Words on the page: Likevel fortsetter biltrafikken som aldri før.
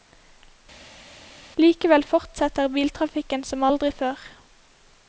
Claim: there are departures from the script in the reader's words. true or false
false